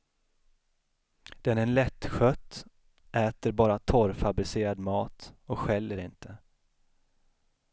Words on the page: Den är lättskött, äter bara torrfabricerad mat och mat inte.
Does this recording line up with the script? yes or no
no